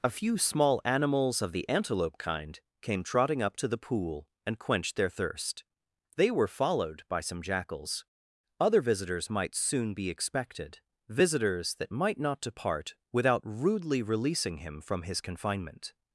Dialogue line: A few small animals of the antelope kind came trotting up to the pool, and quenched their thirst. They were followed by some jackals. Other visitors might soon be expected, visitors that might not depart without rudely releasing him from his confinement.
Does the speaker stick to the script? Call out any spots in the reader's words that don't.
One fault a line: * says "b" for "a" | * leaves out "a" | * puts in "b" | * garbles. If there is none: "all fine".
all fine